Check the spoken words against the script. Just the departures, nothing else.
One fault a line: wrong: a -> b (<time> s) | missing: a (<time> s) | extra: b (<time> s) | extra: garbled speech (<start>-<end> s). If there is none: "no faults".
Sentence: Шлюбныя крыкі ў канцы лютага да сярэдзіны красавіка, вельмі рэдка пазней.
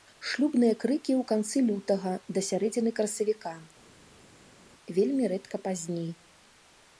no faults